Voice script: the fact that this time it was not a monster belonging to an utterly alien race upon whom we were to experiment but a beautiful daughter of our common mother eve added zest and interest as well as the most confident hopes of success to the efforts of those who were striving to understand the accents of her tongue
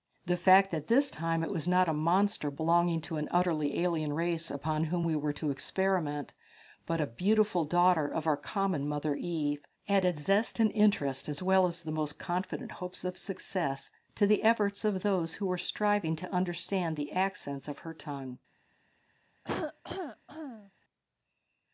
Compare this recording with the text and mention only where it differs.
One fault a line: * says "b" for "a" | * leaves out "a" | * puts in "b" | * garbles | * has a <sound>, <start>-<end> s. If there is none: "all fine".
* has a cough, 19.4-20.7 s